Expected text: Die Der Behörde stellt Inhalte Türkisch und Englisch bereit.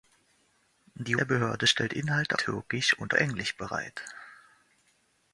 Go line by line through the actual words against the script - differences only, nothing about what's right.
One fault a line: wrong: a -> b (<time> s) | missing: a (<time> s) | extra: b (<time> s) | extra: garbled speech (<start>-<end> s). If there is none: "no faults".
no faults